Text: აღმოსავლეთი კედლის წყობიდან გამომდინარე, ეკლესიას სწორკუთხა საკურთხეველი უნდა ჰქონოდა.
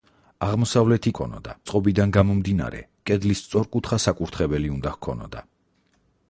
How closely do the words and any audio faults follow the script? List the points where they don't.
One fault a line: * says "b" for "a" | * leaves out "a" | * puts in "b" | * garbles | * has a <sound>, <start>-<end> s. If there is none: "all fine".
* says "ჰქონოდა" for "კედლის"
* says "კედლის" for "ეკლესიას"